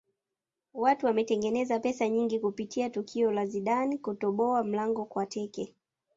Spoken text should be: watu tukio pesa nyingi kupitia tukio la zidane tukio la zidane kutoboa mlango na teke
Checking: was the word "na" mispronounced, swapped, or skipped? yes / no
yes